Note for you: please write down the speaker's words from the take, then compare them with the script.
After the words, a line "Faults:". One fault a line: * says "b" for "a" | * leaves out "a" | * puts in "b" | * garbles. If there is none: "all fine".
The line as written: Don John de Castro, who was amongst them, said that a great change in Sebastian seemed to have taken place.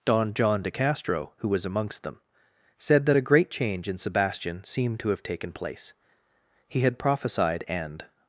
Don John de Castro, who was amongst them, said that a great change in Sebastian seemed to have taken place. (He had prophesied and
Faults:
* puts in "He had prophesied and"